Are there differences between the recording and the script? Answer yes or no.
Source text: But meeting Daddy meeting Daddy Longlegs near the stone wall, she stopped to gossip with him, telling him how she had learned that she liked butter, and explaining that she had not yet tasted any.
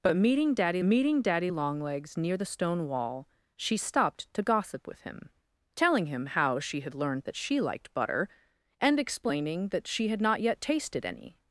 no